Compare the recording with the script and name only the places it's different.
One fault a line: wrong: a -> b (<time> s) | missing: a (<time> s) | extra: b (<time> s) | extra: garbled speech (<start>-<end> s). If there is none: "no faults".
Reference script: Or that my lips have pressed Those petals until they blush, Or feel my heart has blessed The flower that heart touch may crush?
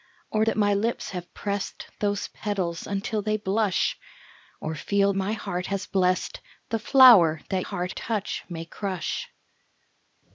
no faults